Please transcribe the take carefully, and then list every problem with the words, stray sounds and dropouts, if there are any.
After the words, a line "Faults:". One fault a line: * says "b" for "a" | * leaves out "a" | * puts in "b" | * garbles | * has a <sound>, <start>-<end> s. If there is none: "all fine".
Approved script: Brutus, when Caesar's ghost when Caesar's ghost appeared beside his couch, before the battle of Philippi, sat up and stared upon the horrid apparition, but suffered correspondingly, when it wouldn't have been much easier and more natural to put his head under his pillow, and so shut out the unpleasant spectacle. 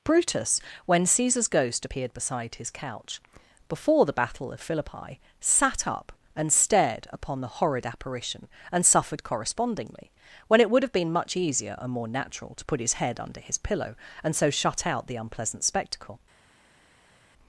Brutus, when Caesar's ghost appeared beside his couch, before the battle of Philippi, sat up and stared upon the horrid apparition, and suffered correspondingly, when it would have been much easier and more natural to put his head under his pillow, and so shut out the unpleasant spectacle.
Faults:
* leaves out "when Caesar's ghost"
* says "and" for "but"
* says "would" for "wouldn't"